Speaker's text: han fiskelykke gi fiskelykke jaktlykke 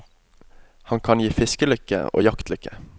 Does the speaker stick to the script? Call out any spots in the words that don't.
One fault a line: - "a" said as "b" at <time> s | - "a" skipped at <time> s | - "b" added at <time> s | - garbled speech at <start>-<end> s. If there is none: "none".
- "fiskelykke" said as "kan" at 1.0 s
- "og" added at 2.1 s